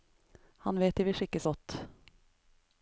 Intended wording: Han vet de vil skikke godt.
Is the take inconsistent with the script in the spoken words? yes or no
no